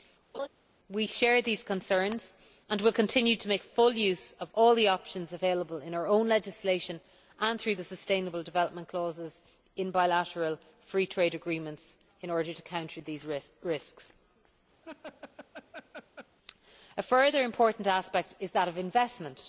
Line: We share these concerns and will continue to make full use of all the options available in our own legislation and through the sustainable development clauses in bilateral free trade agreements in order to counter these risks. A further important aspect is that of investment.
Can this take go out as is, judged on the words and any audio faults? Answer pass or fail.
fail